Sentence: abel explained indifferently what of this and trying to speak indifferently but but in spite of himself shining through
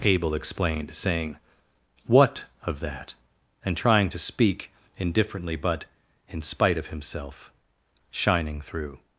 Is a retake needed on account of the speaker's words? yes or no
yes